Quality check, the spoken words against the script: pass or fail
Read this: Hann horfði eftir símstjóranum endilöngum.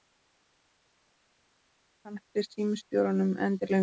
fail